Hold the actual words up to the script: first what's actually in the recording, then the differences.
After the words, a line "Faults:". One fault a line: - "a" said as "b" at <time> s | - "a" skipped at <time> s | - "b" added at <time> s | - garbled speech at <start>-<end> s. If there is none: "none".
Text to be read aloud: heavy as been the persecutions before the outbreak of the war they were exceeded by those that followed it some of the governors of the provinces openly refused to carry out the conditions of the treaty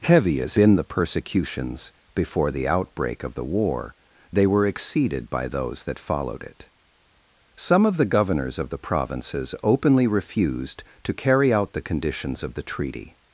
heavy as been the persecutions before the outbreak of the war they were exceeded by those that followed it some of the governors of the provinces openly refused to carry out the conditions of the treaty
Faults:
none